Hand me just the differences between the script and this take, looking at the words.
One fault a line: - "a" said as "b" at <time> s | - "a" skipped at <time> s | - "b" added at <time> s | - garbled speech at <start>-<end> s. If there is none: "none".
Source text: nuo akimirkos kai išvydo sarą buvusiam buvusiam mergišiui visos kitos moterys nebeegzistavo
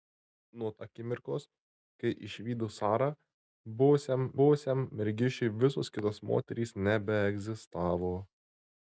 none